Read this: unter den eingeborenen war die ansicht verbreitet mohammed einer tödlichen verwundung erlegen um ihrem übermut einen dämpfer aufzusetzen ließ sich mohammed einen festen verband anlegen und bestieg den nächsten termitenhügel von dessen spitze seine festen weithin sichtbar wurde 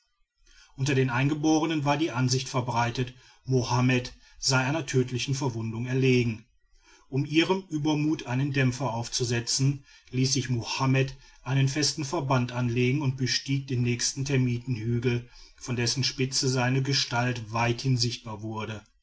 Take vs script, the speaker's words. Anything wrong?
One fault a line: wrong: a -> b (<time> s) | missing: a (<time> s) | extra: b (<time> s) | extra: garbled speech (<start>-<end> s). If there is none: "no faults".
extra: sei (4.4 s)
wrong: festen -> gestalt (16.8 s)